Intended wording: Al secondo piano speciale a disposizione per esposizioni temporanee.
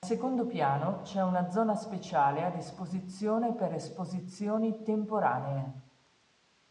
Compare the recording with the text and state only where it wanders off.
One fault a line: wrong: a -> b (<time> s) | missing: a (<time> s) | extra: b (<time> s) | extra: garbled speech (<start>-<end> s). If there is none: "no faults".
extra: c'è una zona (1.0 s)